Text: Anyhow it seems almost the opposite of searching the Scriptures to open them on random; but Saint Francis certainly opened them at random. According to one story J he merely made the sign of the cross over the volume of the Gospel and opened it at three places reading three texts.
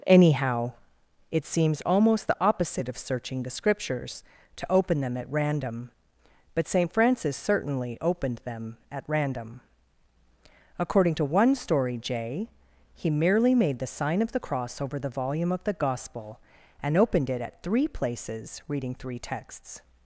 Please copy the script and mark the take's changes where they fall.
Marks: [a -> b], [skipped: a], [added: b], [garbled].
Anyhow it seems almost the opposite of searching the Scriptures to open them [on -> at] random; but Saint Francis certainly opened them at random. According to one story J he merely made the sign of the cross over the volume of the Gospel and opened it at three places reading three texts.